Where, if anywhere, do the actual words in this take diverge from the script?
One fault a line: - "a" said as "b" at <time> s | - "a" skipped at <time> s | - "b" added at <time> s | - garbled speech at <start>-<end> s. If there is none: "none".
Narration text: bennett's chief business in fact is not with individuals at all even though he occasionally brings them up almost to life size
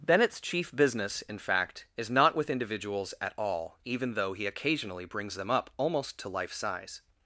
none